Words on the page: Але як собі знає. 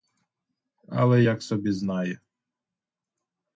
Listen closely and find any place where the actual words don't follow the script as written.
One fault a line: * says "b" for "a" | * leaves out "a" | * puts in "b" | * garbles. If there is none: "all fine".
all fine